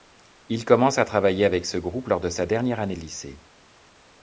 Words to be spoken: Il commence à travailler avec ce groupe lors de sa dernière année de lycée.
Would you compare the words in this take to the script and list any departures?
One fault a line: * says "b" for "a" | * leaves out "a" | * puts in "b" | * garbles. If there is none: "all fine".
all fine